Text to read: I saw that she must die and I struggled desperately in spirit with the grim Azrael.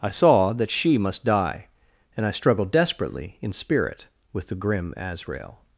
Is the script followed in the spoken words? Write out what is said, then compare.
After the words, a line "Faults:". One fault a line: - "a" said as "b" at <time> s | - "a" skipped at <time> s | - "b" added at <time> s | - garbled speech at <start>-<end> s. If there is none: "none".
I saw that she must die and I struggled desperately in spirit with the grim Azrael.
Faults:
none